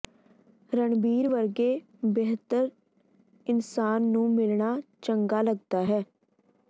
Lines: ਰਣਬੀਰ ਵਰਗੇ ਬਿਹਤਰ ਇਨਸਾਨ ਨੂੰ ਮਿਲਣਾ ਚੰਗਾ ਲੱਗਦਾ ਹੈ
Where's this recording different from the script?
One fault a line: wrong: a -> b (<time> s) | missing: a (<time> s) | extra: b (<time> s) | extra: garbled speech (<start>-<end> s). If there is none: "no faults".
no faults